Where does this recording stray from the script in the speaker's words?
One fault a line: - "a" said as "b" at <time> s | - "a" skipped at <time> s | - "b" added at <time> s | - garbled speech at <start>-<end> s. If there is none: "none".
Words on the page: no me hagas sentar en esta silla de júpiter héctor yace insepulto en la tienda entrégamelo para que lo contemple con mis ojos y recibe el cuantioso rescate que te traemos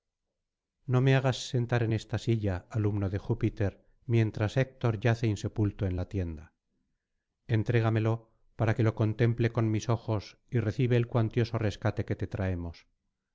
- "alumno" added at 2.7 s
- "mientras" added at 4.0 s